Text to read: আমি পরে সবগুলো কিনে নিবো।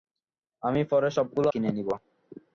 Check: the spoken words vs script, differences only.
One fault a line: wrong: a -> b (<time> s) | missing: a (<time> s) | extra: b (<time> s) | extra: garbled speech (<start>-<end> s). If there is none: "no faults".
no faults